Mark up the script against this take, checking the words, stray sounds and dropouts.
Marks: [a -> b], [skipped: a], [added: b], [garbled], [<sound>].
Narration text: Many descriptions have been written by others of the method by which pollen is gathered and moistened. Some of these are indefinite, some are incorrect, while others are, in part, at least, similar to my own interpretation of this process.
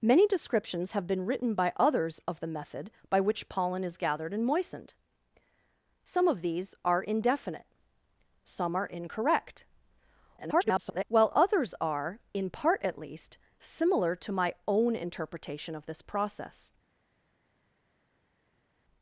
Many descriptions have been written by others of the method by which pollen is gathered and moistened. Some of these are indefinite, some are incorrect, [garbled] while others are, in part, at least, similar to my own interpretation of this process.